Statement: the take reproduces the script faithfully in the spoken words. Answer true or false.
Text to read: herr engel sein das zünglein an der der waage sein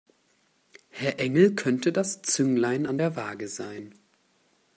false